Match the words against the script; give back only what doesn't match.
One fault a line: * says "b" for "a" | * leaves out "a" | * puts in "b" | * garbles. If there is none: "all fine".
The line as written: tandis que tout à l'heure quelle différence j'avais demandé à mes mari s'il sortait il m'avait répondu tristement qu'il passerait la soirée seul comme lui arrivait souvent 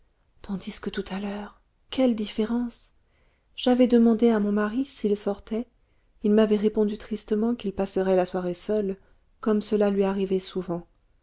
* says "mon" for "mes"
* puts in "cela"